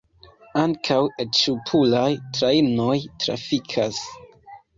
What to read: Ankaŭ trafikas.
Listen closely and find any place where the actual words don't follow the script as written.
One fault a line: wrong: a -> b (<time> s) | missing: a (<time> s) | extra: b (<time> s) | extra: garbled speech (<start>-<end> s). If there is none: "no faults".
extra: et ŝpuraj trajnoj (1.2 s)